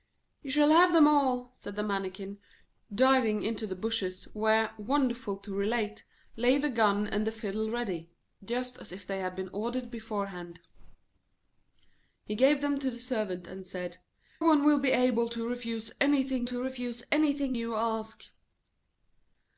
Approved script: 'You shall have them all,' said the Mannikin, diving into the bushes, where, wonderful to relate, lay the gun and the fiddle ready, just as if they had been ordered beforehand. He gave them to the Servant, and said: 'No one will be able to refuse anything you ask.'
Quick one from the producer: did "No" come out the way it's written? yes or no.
no